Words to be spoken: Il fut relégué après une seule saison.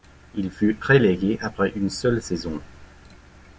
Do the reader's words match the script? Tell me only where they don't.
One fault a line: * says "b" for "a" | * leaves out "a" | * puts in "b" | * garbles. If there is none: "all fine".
all fine